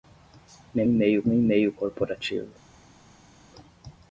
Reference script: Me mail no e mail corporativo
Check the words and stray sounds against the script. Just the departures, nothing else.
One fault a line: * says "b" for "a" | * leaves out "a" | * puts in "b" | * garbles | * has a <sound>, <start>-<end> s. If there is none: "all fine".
all fine